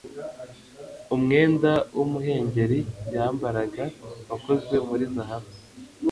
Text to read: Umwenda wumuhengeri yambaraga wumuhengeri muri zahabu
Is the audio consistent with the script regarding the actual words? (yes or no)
no